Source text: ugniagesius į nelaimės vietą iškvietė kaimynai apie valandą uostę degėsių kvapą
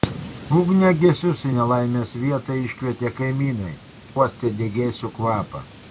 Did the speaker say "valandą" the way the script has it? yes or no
no